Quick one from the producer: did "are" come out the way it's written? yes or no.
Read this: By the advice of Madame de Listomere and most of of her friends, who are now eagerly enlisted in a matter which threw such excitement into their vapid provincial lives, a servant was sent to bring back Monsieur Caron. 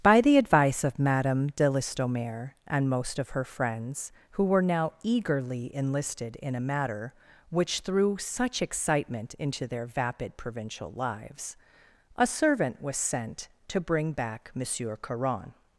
no